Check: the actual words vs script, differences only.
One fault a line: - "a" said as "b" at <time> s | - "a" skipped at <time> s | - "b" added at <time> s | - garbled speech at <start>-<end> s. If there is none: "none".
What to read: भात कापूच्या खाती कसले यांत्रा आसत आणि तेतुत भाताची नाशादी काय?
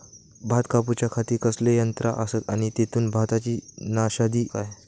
none